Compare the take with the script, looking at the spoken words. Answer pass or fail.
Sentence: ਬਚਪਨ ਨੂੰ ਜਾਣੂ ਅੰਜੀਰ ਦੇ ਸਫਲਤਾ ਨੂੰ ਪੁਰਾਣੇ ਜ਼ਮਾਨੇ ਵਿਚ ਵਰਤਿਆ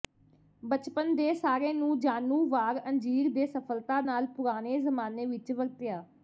fail